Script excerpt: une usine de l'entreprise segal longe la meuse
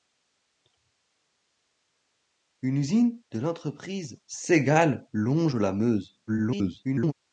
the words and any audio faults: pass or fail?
fail